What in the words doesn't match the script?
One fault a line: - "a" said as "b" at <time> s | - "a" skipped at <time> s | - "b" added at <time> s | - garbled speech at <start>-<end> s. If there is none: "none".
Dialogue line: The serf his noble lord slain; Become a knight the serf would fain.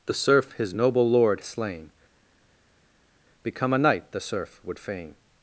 none